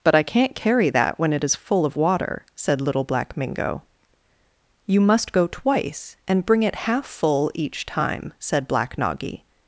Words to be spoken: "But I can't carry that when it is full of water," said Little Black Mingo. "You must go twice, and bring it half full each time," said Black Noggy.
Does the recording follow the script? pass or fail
pass